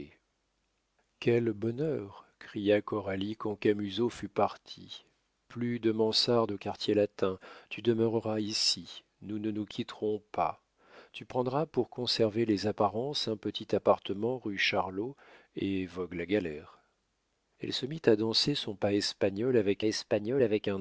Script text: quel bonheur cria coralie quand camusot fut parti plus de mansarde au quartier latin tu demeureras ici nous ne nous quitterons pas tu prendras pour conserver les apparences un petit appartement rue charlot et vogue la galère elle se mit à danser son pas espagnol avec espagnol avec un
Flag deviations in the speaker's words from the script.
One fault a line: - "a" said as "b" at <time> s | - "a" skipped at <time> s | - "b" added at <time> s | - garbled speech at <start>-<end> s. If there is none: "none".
none